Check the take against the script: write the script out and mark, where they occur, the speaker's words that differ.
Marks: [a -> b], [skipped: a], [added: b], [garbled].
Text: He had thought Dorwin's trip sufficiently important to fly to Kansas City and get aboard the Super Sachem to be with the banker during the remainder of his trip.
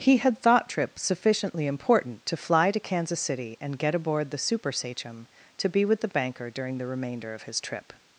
He had thought [skipped: Dorwin's] trip sufficiently important to fly to Kansas City and get aboard the Super Sachem to be with the banker during the remainder of his trip.